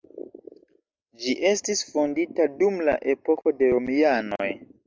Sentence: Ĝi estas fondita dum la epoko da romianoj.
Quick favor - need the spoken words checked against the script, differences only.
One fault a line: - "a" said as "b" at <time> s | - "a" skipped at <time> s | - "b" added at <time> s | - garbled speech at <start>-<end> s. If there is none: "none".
- "estas" said as "estis" at 1.5 s
- "da" said as "de" at 3.6 s